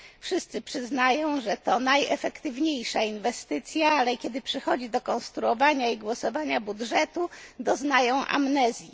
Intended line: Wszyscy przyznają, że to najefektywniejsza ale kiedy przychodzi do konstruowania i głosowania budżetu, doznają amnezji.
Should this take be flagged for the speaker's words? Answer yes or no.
yes